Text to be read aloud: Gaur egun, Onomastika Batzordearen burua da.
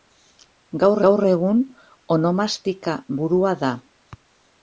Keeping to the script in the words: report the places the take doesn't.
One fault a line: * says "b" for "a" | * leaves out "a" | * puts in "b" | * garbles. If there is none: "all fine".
* puts in "gaur"
* leaves out "Batzordearen"